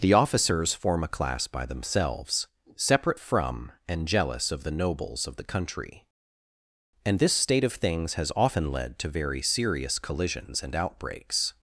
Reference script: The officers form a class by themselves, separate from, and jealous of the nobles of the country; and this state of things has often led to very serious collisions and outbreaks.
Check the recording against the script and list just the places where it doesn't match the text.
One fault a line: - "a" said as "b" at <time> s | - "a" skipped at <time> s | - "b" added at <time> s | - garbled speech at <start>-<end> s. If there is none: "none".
none